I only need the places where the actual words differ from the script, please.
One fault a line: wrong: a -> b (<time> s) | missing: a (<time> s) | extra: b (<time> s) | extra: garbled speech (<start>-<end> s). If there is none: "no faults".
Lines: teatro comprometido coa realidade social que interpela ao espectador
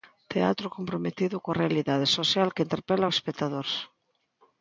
no faults